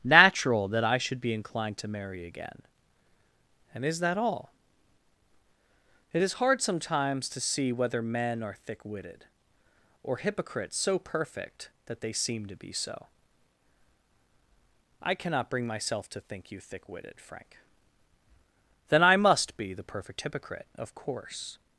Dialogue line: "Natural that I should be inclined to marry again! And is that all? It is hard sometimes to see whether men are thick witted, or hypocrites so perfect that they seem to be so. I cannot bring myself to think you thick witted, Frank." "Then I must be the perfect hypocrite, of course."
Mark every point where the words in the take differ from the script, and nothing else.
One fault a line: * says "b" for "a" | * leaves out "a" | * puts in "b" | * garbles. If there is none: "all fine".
all fine